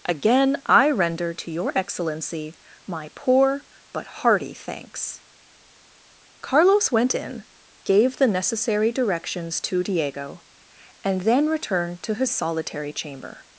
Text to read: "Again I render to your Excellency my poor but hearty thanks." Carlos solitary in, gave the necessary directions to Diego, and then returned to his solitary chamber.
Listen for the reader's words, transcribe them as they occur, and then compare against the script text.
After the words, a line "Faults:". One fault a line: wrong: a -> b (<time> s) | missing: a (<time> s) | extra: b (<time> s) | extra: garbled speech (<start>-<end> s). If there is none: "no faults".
"Again I render to your Excellency my poor but hearty thanks." Carlos went in, gave the necessary directions to Diego, and then returned to his solitary chamber.
Faults:
wrong: solitary -> went (6.9 s)